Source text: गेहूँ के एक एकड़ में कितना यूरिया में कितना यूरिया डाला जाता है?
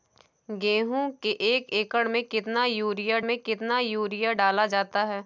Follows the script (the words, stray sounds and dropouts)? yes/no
yes